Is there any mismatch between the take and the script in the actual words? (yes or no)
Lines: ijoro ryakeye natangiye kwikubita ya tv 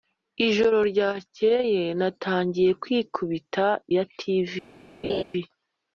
no